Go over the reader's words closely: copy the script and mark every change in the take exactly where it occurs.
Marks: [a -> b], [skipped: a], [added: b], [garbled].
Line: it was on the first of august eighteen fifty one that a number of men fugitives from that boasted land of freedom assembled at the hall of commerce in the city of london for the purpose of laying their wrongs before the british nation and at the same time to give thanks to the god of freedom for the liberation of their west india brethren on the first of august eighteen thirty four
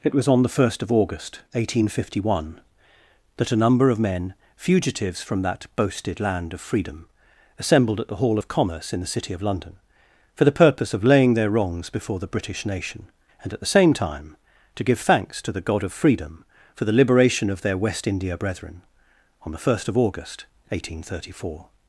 it was on the first of august eighteen fifty one that a number of men fugitives from that boasted land of freedom assembled at the hall of commerce in the city of london for the purpose of laying their wrongs before the british nation and at the same time to give thanks to the god of freedom for the liberation of their west india brethren on the first of august eighteen thirty four